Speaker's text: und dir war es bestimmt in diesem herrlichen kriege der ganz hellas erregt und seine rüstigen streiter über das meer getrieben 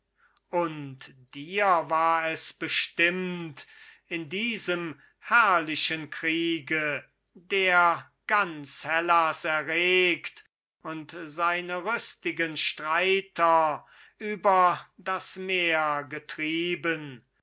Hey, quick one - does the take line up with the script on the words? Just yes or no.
yes